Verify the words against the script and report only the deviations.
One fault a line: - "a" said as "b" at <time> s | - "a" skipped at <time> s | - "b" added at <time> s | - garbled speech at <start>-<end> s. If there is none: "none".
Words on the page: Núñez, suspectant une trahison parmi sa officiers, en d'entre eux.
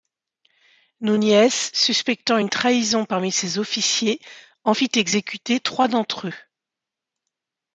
- "sa" said as "ses" at 3.3 s
- "fit exécuter trois" added at 4.7 s